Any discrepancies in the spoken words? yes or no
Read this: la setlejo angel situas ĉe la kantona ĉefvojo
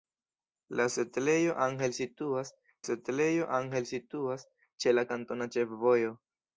yes